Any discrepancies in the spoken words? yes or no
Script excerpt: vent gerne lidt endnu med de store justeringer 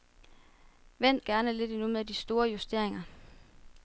no